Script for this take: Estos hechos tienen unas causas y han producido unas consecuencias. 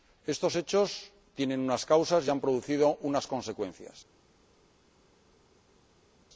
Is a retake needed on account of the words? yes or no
no